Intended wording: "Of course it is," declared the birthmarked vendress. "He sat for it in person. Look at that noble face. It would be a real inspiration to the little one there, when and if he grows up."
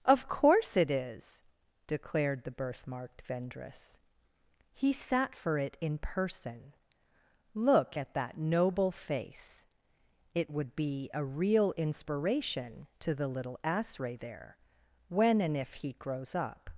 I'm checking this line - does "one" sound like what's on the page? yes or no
no